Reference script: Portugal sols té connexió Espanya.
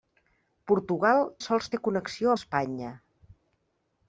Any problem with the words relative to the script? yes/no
no